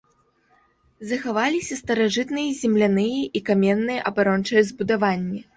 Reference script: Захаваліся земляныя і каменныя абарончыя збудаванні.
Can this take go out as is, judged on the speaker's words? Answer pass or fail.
fail